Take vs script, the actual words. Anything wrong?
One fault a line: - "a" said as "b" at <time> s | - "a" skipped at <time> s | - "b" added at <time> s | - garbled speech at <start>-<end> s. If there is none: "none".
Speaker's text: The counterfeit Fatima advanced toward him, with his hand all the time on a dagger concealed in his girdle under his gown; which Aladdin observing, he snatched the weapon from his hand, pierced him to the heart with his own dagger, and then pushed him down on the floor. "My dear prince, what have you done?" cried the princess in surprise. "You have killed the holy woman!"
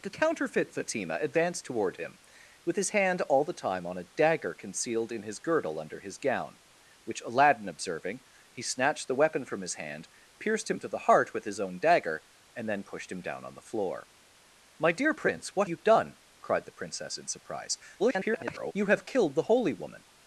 - "have" skipped at 15.7 s
- garbled speech at 18.0-18.7 s